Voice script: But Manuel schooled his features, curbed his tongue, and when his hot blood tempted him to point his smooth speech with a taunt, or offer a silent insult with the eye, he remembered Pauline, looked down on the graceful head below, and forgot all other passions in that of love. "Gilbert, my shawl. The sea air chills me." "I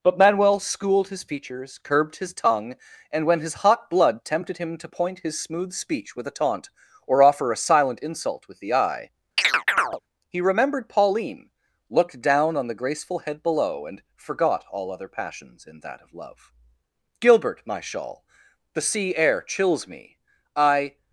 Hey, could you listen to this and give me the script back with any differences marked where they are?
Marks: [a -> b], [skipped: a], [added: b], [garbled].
But Manuel schooled his features, curbed his tongue, and when his hot blood tempted him to point his smooth speech with a taunt, or offer a silent insult with the eye, he remembered Pauline, looked down on the graceful head below, and forgot all other passions in that of love. "Gilbert, my shawl. The sea air chills me." "I